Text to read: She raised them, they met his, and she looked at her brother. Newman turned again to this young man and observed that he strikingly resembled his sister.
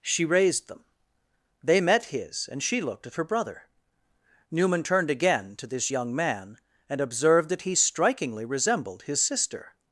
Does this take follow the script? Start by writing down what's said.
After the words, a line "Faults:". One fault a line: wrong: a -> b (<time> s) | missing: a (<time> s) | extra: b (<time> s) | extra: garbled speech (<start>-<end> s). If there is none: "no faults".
She raised them, they met his, and she looked at her brother. Newman turned again to this young man and observed that he strikingly resembled his sister.
Faults:
no faults